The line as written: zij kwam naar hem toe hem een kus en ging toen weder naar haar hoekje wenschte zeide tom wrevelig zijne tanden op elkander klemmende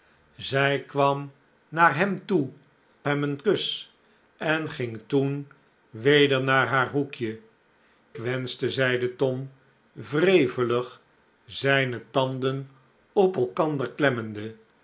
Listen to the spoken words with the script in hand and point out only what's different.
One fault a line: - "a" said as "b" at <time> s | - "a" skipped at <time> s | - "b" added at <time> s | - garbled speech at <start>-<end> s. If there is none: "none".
none